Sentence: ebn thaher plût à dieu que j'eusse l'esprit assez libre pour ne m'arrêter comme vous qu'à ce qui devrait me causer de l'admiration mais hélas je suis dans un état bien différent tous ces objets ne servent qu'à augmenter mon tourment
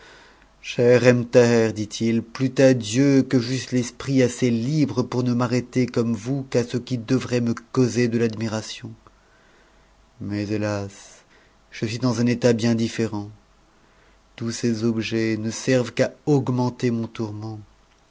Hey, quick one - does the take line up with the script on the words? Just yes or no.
no